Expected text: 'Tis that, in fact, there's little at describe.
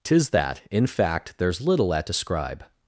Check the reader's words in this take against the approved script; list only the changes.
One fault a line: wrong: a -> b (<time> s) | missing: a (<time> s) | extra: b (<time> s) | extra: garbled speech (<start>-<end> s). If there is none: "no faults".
no faults